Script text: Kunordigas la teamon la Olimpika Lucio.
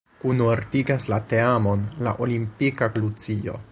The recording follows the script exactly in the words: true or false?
true